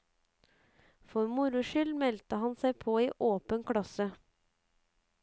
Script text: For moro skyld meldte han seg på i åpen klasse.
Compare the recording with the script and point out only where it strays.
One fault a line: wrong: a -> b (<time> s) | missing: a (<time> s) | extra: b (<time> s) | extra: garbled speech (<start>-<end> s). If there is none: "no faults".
no faults